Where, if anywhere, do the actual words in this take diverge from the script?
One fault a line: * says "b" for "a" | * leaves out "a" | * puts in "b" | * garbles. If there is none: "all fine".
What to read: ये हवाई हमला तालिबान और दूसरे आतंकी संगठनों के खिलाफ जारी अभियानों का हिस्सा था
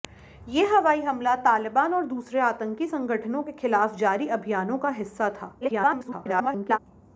* garbles